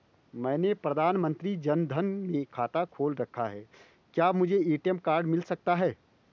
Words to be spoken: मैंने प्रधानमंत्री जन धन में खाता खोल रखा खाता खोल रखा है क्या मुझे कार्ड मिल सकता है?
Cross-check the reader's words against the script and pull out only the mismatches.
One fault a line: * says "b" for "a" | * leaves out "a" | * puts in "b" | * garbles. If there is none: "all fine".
* leaves out "खाता खोल रखा"
* puts in "ए.टी.एम"